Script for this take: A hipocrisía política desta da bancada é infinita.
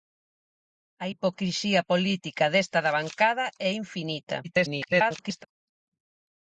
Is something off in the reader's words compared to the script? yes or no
yes